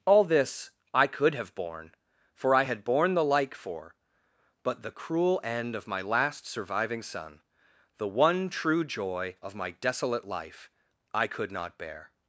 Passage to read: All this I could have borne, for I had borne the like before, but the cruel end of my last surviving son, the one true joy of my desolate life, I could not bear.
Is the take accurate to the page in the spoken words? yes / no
no